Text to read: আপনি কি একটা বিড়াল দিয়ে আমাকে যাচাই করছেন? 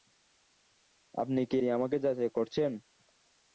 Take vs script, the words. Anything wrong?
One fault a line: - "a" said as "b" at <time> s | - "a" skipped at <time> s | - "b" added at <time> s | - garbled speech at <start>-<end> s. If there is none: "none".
- "একটা বিড়াল" skipped at 1.6 s